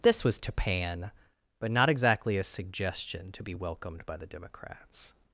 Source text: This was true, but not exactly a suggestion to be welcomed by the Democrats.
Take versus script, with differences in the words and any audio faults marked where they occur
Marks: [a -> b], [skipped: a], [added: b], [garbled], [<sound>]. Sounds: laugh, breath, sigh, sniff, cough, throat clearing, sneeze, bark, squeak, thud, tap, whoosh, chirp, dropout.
This was [true, -> tapan] but not exactly a suggestion to be welcomed by the Democrats.